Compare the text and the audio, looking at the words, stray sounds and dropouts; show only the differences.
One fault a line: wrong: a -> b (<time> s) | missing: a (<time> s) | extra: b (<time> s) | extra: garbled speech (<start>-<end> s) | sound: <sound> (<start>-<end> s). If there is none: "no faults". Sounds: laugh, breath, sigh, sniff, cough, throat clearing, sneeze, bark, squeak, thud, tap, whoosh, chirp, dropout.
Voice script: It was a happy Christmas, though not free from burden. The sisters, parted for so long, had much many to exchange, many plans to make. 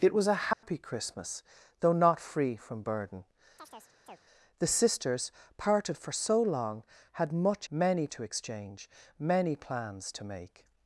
sound: dropout (0.5-0.6 s)
sound: chirp (3.6-4.2 s)